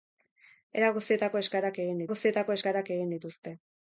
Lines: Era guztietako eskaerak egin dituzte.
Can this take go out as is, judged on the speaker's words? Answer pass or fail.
fail